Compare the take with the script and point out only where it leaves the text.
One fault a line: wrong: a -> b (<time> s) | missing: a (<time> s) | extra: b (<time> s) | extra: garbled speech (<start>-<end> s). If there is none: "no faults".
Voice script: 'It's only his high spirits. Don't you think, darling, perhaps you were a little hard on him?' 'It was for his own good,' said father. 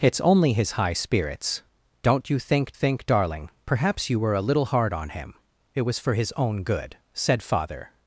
extra: think (2.7 s)